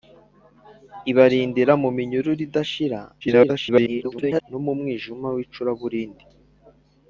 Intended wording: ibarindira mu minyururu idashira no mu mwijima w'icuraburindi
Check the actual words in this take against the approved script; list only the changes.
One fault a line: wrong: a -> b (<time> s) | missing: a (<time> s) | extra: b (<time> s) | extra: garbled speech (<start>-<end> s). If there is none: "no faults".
extra: garbled speech (3.2-4.4 s)